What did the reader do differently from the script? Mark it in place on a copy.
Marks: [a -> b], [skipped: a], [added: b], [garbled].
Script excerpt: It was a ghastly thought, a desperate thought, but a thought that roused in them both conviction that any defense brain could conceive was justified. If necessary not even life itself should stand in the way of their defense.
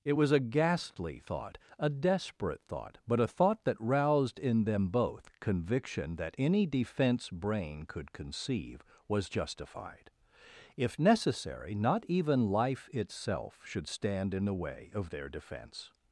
It was a ghastly thought, a desperate thought, but a thought that roused in them both conviction that any defense brain could conceive was justified. If necessary not even life itself should stand in the way of their defense.